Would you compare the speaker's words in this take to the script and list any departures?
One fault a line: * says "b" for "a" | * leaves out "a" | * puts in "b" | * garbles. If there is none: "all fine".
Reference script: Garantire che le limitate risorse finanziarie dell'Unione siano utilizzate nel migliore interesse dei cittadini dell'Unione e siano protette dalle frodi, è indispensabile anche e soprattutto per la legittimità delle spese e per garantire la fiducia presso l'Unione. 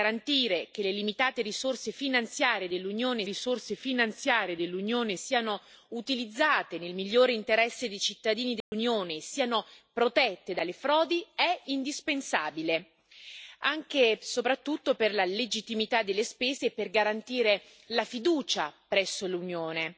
* puts in "risorse finanziarie dell'Unione"